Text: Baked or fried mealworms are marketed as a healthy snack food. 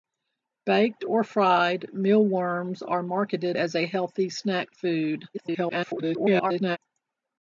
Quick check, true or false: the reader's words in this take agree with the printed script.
false